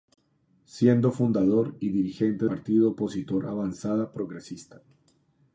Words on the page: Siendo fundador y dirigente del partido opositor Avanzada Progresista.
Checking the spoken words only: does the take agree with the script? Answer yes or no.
no